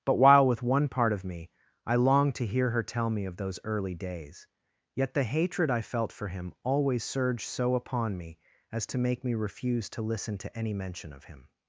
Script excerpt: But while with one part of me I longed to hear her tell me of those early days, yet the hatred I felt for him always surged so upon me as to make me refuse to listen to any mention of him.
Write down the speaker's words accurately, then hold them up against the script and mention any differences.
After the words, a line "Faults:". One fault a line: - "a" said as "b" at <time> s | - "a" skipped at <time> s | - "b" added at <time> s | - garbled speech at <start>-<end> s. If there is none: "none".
But while with one part of me I longed to hear her tell me of those early days, yet the hatred I felt for him always surged so upon me as to make me refuse to listen to any mention of him.
Faults:
none